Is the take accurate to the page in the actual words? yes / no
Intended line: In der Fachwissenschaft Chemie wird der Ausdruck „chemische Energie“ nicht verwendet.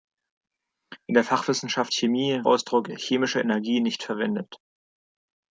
no